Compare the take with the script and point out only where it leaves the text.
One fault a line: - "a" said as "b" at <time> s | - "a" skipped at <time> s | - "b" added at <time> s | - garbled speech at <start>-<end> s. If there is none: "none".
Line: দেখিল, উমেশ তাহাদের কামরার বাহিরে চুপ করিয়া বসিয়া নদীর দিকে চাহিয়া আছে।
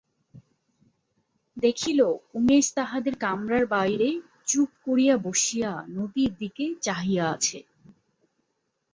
none